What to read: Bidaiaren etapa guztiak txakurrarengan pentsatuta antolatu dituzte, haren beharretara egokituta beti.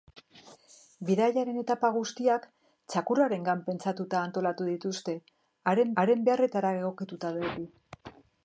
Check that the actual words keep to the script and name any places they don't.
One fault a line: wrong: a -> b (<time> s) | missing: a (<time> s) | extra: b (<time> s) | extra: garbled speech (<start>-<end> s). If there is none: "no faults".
extra: haren (6.0 s)